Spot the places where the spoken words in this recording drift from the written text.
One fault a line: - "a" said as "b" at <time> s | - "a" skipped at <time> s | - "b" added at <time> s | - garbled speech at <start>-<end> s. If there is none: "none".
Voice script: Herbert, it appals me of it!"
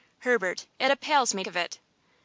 none